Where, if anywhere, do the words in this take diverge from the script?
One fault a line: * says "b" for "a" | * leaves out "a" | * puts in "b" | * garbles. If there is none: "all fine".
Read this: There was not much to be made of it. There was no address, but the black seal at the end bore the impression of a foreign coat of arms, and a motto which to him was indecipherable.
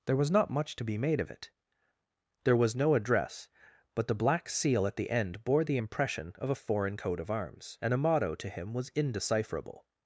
* leaves out "which"